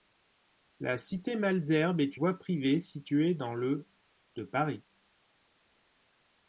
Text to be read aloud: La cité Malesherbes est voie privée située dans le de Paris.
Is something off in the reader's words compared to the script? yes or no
no